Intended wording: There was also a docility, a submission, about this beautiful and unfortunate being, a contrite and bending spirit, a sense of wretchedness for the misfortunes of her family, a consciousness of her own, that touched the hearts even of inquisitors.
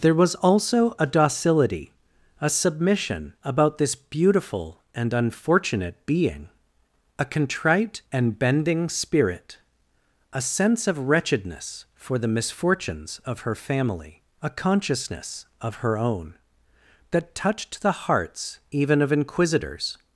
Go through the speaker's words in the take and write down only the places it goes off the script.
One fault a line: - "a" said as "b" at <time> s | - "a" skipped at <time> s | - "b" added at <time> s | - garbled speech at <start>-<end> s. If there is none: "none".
none